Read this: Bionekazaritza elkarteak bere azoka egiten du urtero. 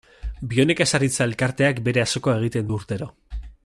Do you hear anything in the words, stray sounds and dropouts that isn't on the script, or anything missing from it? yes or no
no